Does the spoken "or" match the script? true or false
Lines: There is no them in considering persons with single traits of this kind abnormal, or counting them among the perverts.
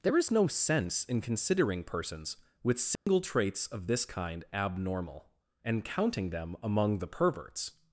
false